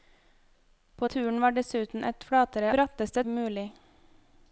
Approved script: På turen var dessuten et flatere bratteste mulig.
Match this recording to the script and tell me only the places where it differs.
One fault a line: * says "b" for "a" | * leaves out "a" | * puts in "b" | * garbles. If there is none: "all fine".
all fine